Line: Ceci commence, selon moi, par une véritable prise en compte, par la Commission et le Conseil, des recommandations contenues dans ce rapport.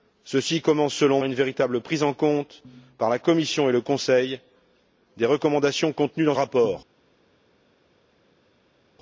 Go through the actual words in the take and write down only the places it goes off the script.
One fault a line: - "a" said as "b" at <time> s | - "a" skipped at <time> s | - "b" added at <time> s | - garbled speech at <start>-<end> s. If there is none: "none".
- "moi par" skipped at 1.2 s
- "ce" skipped at 6.4 s